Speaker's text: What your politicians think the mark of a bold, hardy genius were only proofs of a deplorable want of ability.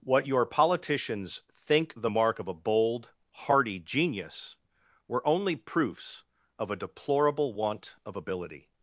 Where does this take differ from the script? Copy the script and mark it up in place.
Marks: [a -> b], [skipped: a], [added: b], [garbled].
What your politicians think the mark of a bold, hardy genius were only proofs of a deplorable want of ability.